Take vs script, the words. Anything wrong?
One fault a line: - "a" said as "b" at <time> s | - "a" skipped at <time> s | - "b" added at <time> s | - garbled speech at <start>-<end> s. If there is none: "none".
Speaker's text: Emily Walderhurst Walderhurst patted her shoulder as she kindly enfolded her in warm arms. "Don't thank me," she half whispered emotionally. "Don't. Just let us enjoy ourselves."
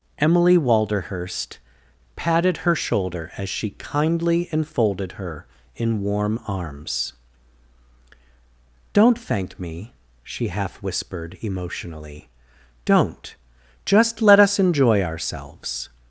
- "Walderhurst" skipped at 1.6 s